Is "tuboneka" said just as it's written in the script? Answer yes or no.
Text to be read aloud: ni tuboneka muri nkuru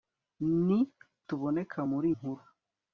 yes